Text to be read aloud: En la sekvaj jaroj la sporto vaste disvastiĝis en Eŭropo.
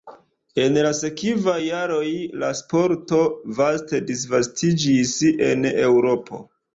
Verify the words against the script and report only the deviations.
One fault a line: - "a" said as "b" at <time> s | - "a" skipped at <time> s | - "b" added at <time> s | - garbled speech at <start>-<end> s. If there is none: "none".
none